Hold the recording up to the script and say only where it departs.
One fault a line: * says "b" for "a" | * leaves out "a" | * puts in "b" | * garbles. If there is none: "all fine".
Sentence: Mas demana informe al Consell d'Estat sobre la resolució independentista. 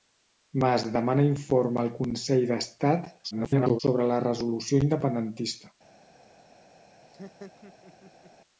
* garbles